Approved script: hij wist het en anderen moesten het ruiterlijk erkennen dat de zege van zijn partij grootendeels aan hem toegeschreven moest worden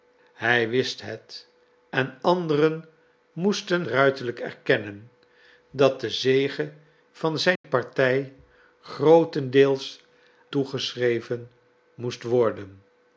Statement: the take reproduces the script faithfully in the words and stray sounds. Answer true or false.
false